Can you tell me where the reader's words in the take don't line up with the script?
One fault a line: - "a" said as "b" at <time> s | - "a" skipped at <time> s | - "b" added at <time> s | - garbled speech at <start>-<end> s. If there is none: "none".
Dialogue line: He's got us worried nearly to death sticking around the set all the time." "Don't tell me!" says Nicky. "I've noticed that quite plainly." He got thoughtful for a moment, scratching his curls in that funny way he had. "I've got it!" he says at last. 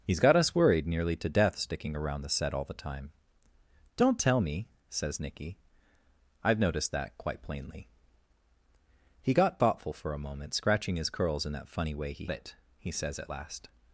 - "had I've got" skipped at 12.2 s